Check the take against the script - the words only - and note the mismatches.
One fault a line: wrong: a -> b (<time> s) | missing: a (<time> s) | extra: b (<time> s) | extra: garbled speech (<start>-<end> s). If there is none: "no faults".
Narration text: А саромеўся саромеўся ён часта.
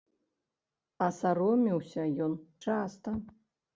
missing: саромеўся (2.0 s)